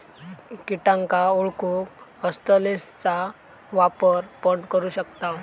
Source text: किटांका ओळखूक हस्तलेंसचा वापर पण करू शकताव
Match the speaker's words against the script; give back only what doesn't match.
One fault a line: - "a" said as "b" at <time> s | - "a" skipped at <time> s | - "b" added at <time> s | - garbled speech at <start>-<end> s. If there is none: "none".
none